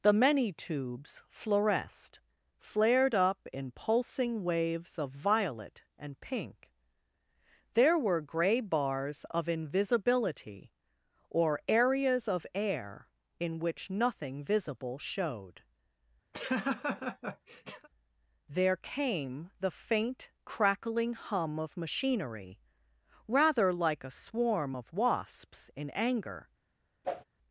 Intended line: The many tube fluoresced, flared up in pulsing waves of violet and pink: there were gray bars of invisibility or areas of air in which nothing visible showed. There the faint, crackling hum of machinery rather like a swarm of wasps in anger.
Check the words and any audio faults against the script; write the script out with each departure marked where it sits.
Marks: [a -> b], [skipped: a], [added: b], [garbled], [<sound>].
The many [tube -> tubes] fluoresced, flared up in pulsing waves of violet and pink: there were gray bars of invisibility or areas of air in which nothing visible showed. [laugh] There [added: came] the faint, crackling hum of machinery rather like a swarm of wasps in anger. [whoosh]